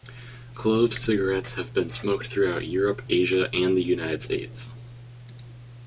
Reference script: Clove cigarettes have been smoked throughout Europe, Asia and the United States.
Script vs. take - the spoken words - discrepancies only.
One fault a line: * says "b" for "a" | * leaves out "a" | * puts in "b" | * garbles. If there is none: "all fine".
all fine